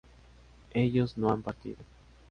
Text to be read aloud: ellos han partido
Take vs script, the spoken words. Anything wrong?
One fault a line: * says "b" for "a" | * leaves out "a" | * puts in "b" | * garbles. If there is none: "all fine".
* puts in "no"